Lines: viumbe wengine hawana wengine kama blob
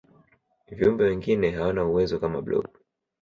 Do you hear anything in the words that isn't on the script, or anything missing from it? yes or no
yes